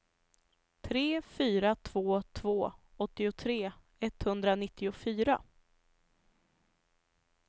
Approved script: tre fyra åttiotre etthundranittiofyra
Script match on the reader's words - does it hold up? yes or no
no